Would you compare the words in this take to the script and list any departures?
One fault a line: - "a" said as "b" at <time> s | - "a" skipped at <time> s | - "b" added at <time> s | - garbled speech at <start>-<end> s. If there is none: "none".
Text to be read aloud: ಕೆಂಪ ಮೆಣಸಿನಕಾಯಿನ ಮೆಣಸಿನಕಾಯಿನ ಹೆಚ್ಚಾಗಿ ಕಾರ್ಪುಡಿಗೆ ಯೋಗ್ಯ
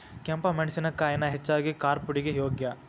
- "ಮೆಣಸಿನಕಾಯಿನ" skipped at 1.3 s